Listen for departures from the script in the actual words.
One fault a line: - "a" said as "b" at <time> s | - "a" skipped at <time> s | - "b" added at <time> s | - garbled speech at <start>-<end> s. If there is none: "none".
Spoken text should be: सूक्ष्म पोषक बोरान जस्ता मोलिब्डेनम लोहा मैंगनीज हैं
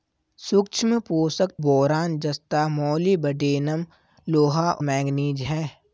none